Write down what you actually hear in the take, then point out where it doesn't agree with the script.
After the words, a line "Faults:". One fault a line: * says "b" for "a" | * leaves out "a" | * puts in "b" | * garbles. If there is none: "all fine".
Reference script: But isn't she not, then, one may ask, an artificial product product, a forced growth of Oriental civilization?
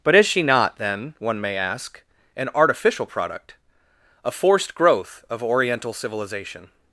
But is she not, then, one may ask, an artificial product, a forced growth of Oriental civilization?
Faults:
* says "is" for "isn't"
* leaves out "product"